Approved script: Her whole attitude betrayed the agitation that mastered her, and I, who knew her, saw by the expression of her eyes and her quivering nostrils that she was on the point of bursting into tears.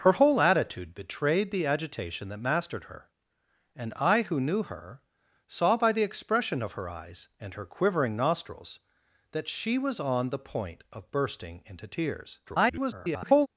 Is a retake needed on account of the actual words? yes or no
yes